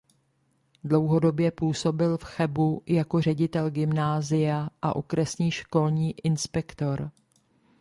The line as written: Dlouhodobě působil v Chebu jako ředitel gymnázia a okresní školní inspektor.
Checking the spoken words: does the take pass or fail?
pass